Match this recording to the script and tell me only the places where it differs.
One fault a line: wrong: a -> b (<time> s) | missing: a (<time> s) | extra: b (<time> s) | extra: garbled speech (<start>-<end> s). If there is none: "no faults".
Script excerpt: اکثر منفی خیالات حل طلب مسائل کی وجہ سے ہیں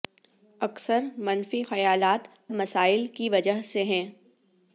missing: حل طلب (2.3 s)